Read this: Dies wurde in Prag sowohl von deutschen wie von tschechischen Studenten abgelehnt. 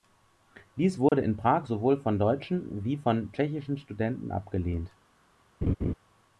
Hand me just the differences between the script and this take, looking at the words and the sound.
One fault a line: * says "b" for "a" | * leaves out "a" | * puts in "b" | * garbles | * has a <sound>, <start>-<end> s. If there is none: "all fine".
* has a dropout, 1.1-1.1 s
* has a laugh, 5.6-5.9 s